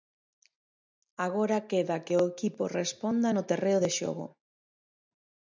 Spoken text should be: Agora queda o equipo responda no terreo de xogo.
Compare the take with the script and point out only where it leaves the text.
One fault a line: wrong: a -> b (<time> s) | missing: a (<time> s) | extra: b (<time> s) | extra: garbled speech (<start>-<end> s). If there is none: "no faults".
extra: que (2.0 s)